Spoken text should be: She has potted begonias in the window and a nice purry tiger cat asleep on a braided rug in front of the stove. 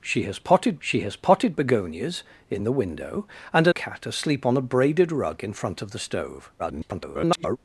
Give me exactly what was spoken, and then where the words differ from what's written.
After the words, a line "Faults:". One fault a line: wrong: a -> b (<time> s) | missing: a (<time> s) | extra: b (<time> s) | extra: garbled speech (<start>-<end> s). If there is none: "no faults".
She has potted she has potted begonias in the window and a cat asleep on a braided rug in front of the stove. [garbled]
Faults:
extra: she has potted (0.8 s)
missing: nice purry tiger (3.7 s)
extra: garbled speech (6.6-7.6 s)